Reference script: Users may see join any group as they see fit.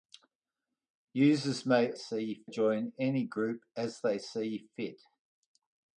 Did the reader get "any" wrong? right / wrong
right